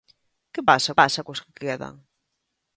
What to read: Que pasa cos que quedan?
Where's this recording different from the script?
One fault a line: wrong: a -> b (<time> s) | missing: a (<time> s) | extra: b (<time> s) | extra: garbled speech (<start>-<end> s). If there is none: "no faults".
extra: pasa (1.0 s)